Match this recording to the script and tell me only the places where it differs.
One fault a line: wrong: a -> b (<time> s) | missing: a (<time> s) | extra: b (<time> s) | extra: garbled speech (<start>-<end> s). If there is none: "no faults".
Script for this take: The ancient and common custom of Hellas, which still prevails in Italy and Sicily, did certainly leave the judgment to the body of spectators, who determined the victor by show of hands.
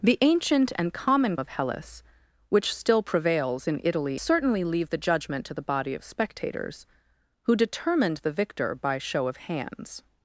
missing: custom (1.4 s)
missing: and Sicily did (4.2 s)